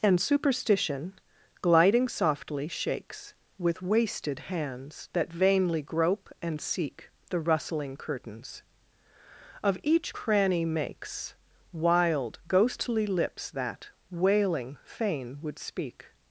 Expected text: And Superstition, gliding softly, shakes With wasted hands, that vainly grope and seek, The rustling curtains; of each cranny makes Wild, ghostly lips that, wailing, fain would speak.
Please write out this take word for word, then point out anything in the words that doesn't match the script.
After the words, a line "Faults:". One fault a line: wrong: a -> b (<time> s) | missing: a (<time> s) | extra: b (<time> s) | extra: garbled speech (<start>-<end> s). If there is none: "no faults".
And Superstition, gliding softly, shakes With wasted hands, that vainly grope and seek, The rustling curtains; of each cranny makes Wild, ghostly lips that, wailing, fain would speak.
Faults:
no faults